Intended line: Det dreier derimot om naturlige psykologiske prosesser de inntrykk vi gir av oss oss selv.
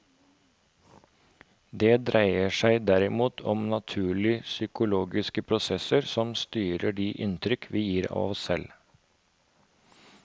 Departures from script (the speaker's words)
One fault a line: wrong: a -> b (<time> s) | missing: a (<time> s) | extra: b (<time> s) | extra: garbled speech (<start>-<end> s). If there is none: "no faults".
extra: seg (2.6 s)
extra: som styrer (6.2 s)
missing: oss (8.5 s)